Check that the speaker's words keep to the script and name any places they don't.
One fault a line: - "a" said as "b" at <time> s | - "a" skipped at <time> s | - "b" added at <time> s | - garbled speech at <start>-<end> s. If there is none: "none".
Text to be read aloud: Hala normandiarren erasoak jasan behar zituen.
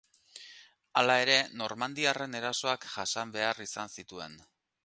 - "ere" added at 1.2 s
- "izan" added at 3.7 s